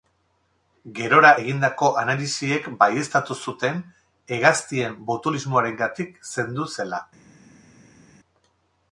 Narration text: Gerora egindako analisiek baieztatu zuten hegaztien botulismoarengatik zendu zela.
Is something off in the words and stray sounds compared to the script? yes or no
no